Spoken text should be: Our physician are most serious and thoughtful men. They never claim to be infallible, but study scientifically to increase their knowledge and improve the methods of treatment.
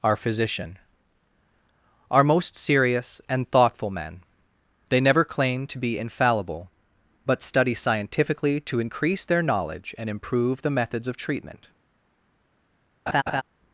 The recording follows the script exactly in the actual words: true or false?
true